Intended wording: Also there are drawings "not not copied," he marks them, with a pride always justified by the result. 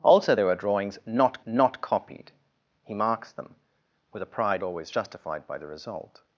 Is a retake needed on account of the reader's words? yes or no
no